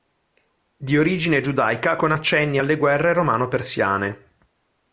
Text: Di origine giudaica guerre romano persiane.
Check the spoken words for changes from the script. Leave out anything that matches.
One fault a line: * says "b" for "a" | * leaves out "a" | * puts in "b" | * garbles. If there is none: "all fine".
* puts in "con accenni alle"